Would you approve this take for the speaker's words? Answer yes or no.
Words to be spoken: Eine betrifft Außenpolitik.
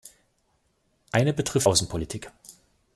yes